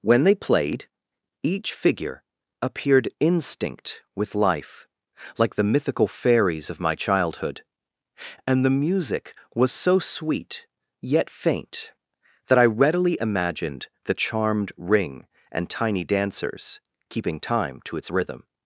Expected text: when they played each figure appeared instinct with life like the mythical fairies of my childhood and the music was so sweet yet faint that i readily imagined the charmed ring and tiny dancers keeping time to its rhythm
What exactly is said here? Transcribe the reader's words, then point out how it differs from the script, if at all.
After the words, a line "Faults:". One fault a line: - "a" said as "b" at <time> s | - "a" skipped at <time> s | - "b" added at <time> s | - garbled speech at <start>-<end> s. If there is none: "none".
when they played each figure appeared instinct with life like the mythical fairies of my childhood and the music was so sweet yet faint that i readily imagined the charmed ring and tiny dancers keeping time to its rhythm
Faults:
none